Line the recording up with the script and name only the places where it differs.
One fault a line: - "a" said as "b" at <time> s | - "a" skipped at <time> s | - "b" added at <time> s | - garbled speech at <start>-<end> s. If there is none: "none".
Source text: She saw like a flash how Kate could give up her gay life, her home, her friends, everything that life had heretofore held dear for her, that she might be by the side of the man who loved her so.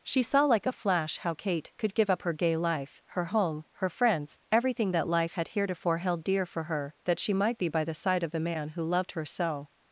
none